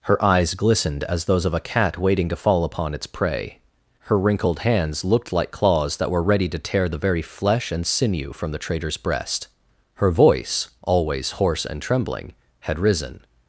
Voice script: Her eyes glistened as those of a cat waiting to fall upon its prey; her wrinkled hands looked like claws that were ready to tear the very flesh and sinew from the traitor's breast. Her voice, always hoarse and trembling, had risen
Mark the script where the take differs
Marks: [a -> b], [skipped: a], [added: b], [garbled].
Her eyes glistened as those of a cat waiting to fall upon its prey; her wrinkled hands looked like claws that were ready to tear the very flesh and sinew from the traitor's breast. Her voice, always hoarse and trembling, had risen